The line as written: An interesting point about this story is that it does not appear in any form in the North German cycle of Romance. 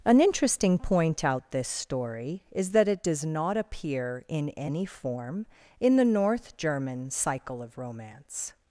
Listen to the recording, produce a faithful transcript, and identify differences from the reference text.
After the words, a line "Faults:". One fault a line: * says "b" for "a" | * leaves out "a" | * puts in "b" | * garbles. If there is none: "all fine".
An interesting point out this story is that it does not appear in any form in the North German cycle of Romance.
Faults:
* says "out" for "about"